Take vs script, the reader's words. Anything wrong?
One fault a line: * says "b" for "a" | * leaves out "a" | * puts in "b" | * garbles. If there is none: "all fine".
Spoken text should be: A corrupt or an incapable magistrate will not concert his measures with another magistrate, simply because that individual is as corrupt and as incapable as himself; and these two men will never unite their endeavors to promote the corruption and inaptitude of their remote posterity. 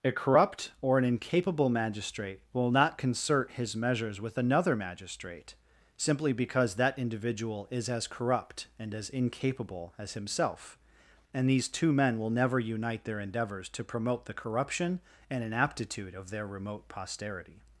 all fine